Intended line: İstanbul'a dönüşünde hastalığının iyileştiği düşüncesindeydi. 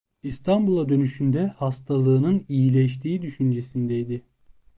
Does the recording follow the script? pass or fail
pass